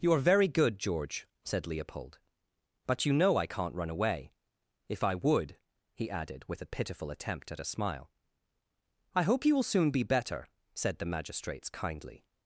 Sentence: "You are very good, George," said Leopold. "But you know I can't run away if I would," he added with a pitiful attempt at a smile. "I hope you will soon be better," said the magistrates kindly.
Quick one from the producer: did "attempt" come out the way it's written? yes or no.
yes